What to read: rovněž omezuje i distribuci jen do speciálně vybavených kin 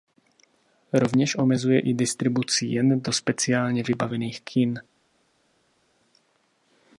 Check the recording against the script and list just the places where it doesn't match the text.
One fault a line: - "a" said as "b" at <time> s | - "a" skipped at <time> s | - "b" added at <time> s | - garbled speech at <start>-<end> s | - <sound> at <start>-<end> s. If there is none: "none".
none